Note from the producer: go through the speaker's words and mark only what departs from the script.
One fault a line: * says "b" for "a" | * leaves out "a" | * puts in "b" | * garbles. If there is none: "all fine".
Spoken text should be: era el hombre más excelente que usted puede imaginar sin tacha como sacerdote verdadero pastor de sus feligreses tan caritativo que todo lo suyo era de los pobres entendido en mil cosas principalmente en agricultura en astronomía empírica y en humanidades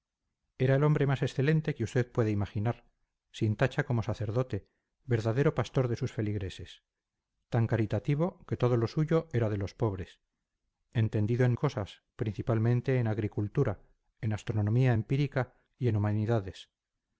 * leaves out "mil"